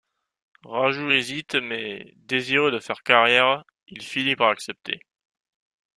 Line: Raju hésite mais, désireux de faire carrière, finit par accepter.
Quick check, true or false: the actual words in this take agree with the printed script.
false